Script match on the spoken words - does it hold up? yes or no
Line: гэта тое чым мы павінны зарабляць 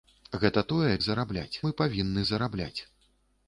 no